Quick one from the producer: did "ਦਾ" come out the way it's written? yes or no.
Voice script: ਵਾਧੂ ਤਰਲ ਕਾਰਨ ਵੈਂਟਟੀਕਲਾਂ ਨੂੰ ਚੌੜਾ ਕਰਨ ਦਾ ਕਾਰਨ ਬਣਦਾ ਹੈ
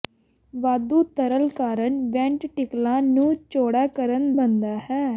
no